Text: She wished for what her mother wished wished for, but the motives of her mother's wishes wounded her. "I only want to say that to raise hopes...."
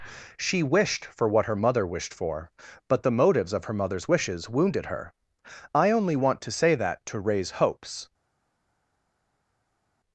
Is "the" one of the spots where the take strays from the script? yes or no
no